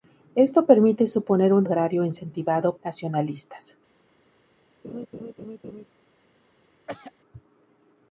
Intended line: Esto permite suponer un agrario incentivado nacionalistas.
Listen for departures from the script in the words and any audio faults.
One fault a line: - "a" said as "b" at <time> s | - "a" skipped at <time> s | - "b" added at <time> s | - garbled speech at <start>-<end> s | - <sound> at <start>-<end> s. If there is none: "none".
- laugh at 4.8-5.9 s
- throat clearing at 6.9-7.1 s